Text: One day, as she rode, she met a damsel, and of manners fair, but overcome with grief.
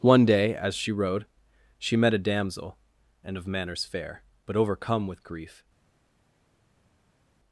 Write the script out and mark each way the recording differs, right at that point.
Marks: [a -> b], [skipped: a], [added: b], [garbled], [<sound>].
One day, as she rode, she met a damsel, and of manners fair, but overcome with grief.